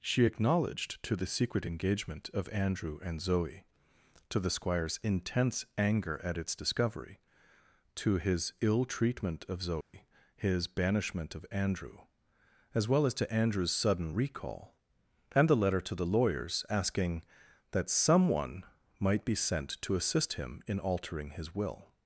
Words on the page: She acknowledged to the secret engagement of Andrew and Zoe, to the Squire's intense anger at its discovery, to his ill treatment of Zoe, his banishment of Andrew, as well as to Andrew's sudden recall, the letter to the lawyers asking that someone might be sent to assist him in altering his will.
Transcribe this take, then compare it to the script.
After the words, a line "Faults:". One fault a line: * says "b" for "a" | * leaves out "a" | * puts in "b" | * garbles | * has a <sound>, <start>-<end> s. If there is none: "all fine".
She acknowledged to the secret engagement of Andrew and Zoe, to the Squire's intense anger at its discovery, to his ill treatment of Zoe, his banishment of Andrew, as well as to Andrew's sudden recall, and the letter to the lawyers asking that someone might be sent to assist him in altering his will.
Faults:
* has a dropout, 9.8-9.9 s
* puts in "and"